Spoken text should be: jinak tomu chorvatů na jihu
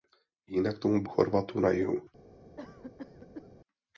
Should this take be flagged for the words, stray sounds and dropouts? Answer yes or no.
yes